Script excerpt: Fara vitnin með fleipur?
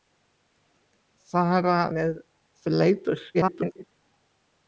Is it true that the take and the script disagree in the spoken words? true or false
true